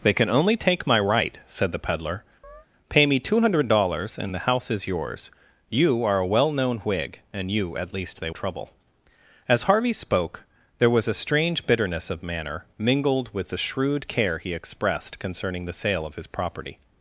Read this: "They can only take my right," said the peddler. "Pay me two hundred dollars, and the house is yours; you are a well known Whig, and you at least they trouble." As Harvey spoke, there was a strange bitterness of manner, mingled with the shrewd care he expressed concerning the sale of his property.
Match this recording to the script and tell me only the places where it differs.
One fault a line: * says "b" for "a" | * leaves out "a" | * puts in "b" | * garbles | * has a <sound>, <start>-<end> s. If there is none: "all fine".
* has a chirp, 2.4-2.7 s